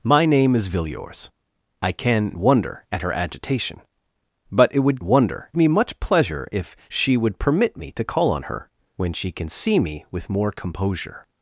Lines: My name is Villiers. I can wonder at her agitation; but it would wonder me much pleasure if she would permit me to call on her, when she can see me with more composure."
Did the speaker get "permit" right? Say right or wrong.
right